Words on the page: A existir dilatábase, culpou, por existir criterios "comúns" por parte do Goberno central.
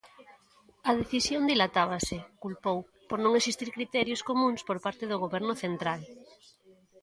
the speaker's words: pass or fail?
fail